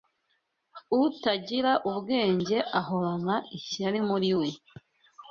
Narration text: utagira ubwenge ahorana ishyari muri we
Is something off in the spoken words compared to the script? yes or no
no